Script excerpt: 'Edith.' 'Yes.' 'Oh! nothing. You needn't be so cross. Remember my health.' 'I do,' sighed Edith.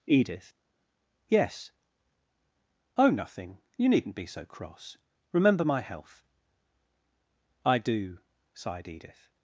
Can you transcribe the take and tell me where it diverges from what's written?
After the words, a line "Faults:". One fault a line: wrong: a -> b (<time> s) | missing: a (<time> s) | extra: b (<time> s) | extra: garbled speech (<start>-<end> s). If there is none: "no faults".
'Edith.' 'Yes.' 'Oh! nothing. You needn't be so cross. Remember my health.' 'I do,' sighed Edith.
Faults:
no faults